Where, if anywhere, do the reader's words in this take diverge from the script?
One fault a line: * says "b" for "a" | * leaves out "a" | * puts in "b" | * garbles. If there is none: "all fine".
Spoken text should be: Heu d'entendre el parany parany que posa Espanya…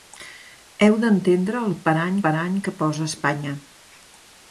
all fine